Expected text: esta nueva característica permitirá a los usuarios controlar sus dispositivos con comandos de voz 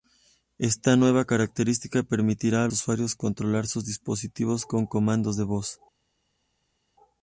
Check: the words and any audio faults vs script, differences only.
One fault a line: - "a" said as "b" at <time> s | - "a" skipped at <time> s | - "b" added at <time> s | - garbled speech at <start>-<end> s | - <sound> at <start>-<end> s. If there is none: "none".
- "los" skipped at 2.7 s